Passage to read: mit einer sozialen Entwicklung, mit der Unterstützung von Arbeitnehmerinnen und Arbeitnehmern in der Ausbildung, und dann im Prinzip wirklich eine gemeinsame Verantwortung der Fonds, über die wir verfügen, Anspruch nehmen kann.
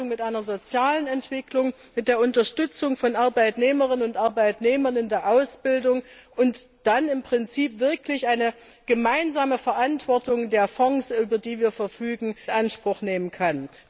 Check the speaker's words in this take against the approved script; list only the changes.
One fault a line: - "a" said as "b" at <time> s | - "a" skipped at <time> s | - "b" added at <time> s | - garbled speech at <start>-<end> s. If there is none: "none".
none